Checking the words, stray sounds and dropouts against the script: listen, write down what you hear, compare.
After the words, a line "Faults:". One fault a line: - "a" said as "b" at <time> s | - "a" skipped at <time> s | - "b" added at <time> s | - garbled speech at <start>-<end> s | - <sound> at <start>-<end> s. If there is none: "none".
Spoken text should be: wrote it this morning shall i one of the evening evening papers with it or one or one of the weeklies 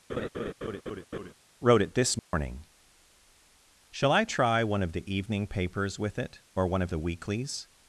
wrote it this morning shall i try one of the evening papers with it or one of the weeklies
Faults:
- laugh at 0.1-1.3 s
- dropout at 2.2-2.3 s
- "try" added at 4.2 s
- "evening" skipped at 5.5 s
- "or one" skipped at 6.8 s